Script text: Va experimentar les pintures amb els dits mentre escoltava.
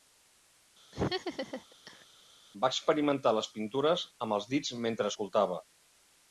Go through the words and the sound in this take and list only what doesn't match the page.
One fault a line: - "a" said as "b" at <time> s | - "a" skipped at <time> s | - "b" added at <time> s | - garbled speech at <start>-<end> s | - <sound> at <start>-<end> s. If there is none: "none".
- laugh at 0.9-2.1 s